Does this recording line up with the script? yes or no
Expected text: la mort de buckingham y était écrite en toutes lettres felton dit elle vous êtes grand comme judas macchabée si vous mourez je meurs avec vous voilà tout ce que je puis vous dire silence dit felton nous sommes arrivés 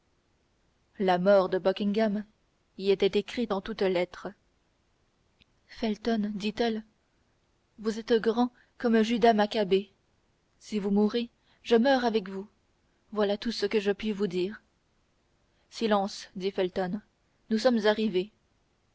yes